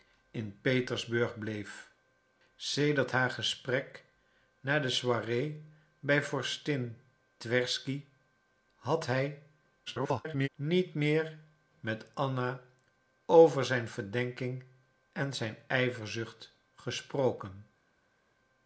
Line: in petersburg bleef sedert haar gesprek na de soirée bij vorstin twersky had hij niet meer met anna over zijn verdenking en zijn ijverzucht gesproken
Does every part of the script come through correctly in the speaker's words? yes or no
no